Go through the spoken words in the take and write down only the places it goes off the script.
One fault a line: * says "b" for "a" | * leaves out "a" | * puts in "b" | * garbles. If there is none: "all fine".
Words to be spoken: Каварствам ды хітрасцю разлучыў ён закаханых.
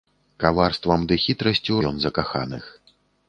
* leaves out "разлучыў"